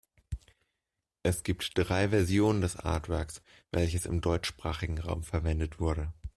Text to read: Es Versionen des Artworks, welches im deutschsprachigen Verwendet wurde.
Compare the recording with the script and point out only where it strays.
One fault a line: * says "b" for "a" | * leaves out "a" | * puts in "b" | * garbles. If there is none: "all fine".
* puts in "gibt drei"
* puts in "Raum"